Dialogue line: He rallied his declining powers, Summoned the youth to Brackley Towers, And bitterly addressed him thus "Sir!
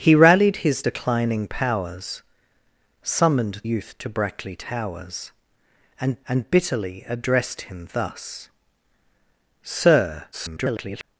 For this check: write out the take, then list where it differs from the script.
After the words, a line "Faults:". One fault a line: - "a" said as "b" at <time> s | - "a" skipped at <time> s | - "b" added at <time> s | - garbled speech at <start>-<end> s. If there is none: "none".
He rallied his declining powers, Summoned youth to Brackley Towers, And And bitterly addressed him thus "Sir! [garbled]
Faults:
- "the" skipped at 3.6 s
- "And" added at 6.3 s
- garbled speech at 10.3-11.0 s